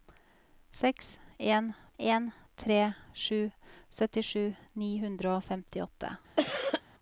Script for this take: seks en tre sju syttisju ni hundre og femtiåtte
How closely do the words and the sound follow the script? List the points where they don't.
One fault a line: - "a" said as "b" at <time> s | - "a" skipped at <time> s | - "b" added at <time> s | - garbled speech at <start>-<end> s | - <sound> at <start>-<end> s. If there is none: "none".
- "en" added at 2.0 s
- cough at 6.4-6.8 s